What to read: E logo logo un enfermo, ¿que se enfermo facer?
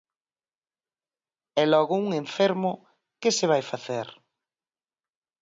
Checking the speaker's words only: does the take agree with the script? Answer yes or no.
no